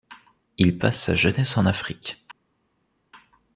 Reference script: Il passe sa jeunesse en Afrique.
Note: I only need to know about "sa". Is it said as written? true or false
true